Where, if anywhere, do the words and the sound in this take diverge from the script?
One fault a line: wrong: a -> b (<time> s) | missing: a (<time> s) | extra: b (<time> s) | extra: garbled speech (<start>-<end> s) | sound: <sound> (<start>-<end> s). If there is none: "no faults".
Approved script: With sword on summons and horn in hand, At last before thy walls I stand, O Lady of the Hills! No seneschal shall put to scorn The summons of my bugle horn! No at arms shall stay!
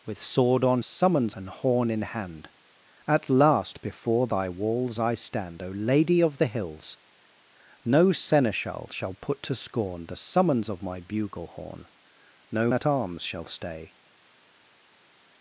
no faults